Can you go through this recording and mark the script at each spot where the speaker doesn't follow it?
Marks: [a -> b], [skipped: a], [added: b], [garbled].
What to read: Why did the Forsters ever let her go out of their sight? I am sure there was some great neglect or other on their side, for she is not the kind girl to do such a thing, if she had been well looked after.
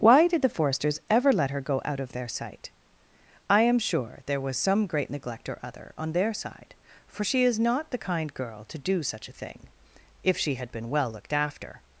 Why did the Forsters ever let her go out of their sight? I am sure there was some great neglect or other on their side, for she is not the kind girl to do such a thing, if she had been well looked after.